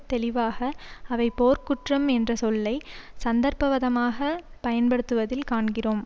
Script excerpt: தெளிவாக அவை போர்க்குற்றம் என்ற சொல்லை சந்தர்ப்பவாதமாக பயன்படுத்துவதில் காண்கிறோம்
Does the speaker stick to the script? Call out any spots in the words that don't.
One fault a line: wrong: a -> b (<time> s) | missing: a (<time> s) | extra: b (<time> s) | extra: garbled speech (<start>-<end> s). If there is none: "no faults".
no faults